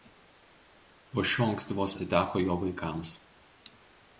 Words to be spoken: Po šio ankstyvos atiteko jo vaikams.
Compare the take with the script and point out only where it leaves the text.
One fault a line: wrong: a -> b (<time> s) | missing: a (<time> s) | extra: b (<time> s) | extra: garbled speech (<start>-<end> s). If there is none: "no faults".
no faults